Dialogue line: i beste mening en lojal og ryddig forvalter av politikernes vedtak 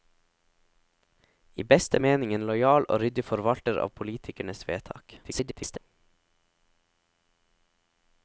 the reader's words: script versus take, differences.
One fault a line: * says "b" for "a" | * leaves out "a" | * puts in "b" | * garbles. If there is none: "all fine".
* garbles